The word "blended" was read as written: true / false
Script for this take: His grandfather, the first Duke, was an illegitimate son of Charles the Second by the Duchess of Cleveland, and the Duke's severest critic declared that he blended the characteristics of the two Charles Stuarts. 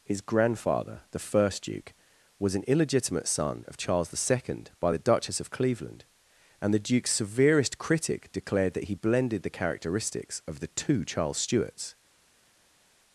true